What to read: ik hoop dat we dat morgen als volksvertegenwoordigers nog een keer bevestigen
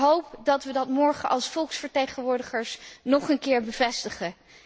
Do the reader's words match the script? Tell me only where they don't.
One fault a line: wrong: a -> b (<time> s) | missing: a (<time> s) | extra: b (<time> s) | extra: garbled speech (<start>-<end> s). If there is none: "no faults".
no faults